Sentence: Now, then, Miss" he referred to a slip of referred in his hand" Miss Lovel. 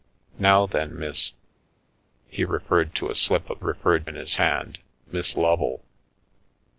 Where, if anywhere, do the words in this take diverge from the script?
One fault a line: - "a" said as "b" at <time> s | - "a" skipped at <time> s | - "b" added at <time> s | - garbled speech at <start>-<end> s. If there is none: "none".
none